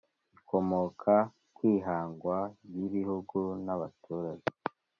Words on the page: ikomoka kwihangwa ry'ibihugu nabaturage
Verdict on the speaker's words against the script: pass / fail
pass